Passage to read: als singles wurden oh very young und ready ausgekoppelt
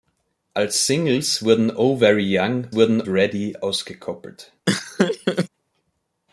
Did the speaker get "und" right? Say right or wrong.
wrong